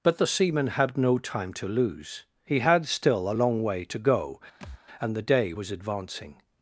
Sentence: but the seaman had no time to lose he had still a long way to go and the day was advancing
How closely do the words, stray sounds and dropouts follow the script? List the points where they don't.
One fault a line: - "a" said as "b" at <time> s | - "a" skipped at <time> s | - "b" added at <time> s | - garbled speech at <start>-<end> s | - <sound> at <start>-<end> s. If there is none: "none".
- thud at 4.6-4.8 s